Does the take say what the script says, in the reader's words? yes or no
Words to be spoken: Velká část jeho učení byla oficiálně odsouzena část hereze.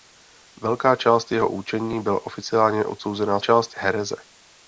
yes